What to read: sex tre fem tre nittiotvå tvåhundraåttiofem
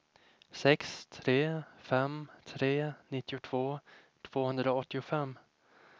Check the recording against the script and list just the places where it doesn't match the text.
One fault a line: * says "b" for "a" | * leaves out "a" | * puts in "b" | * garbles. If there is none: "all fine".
all fine